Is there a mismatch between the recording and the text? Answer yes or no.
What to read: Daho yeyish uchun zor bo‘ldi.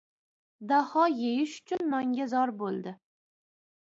yes